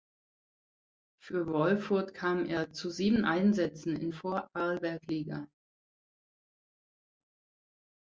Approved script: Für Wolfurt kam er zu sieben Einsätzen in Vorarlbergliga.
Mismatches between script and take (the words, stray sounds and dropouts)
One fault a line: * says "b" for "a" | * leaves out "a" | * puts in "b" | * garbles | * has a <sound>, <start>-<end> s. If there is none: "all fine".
all fine